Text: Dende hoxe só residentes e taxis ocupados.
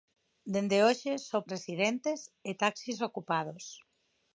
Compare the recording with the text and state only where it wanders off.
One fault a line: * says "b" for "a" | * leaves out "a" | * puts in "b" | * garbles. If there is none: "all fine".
all fine